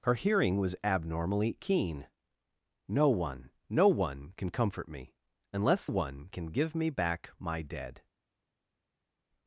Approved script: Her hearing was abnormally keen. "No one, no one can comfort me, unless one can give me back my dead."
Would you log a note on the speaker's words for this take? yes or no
no